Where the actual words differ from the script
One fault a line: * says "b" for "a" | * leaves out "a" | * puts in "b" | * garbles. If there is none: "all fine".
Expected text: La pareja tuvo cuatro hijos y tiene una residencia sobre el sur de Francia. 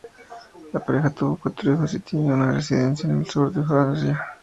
* says "en" for "sobre"